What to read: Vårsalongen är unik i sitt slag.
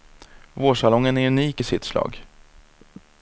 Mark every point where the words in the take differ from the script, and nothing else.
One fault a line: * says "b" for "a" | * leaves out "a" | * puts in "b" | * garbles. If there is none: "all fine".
all fine